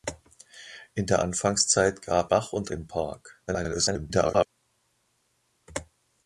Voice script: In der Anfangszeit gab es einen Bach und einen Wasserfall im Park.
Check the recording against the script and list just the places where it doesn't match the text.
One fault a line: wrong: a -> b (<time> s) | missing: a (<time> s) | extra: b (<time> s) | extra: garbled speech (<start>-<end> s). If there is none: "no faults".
missing: es einen (2.3 s)
missing: einen Wasserfall (2.7 s)
extra: garbled speech (3.5-4.5 s)